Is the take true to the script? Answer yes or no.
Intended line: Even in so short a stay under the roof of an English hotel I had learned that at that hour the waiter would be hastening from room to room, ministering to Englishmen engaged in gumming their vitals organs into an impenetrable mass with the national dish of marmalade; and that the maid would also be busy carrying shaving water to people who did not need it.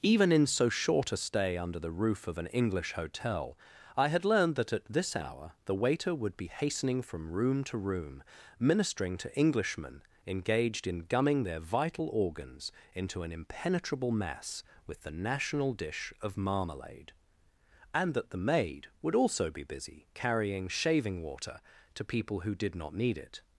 no